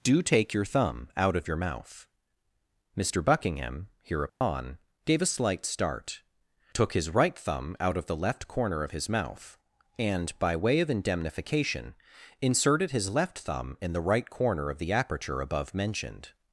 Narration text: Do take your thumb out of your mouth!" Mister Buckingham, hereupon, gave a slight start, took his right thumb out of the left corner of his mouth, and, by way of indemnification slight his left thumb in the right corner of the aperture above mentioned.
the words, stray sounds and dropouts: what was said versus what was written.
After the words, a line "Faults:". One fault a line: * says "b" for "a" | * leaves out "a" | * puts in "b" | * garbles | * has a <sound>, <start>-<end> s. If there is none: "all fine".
Do take your thumb out of your mouth!" Mister Buckingham, hereupon, gave a slight start, took his right thumb out of the left corner of his mouth, and, by way of indemnification inserted his left thumb in the right corner of the aperture above mentioned.
Faults:
* has a dropout, 4.3-4.4 s
* says "inserted" for "slight"